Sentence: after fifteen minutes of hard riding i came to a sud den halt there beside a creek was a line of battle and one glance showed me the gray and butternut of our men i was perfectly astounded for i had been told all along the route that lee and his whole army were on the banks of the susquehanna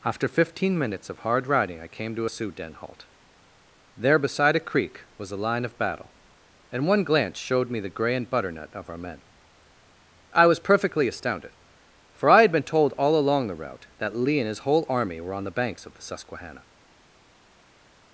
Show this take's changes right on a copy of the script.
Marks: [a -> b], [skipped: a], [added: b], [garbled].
after fifteen minutes of hard riding i came to a [sud -> sioux] den halt there beside a creek was a line of battle and one glance showed me the gray and butternut of our men i was perfectly astounded for i had been told all along the route that lee and his whole army were on the banks of the susquehanna